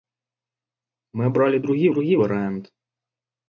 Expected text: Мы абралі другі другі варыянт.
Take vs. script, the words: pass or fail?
pass